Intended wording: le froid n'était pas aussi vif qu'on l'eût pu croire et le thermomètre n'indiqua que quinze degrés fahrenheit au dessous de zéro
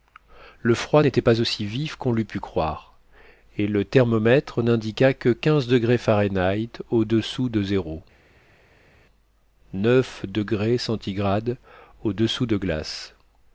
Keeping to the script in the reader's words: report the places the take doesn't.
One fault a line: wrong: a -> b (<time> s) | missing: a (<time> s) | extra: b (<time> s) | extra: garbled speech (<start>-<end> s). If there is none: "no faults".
no faults